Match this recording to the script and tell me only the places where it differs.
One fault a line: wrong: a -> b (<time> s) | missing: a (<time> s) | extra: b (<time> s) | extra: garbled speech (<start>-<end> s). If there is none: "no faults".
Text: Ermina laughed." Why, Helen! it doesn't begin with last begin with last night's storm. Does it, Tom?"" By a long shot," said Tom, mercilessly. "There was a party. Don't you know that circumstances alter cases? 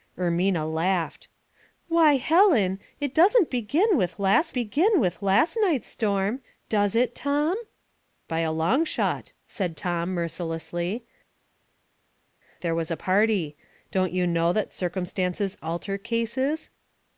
no faults